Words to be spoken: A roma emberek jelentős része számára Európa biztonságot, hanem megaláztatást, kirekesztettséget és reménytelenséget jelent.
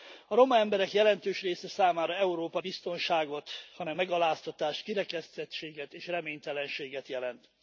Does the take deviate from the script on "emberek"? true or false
false